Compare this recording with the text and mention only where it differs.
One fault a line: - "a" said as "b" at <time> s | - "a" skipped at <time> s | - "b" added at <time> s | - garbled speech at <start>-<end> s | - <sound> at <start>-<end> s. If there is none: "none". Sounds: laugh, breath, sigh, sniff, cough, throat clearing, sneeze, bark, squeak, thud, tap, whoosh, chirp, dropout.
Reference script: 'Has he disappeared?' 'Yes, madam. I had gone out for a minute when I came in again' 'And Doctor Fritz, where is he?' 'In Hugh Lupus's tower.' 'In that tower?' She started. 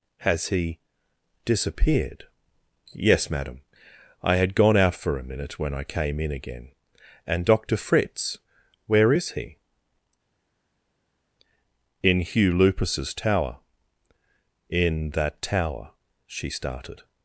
none